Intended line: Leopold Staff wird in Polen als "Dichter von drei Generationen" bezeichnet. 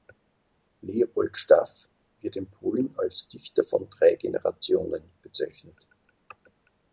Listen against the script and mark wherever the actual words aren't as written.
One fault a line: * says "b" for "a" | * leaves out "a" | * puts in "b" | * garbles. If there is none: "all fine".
all fine